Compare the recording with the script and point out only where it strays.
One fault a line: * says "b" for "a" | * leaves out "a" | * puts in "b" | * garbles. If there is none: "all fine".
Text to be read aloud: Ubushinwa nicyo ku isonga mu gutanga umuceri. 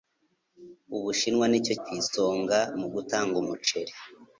all fine